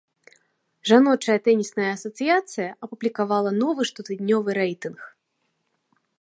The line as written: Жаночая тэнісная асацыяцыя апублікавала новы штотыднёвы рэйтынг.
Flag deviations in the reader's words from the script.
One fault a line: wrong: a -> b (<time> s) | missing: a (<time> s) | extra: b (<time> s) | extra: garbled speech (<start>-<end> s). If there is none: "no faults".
no faults